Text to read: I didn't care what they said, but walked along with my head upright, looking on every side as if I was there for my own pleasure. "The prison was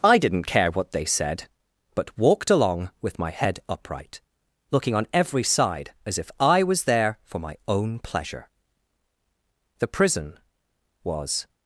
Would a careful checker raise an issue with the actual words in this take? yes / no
no